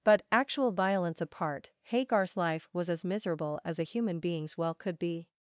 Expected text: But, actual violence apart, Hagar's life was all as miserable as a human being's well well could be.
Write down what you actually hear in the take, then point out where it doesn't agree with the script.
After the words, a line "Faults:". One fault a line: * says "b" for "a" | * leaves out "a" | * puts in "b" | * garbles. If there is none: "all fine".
But, actual violence apart, Hagar's life was as miserable as a human being's well could be.
Faults:
* leaves out "all"
* leaves out "well"